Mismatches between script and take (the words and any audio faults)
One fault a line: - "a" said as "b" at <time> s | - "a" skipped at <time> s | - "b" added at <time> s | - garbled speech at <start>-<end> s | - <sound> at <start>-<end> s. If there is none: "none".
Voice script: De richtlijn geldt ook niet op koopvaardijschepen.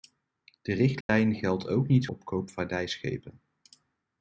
- dropout at 1.0-1.1 s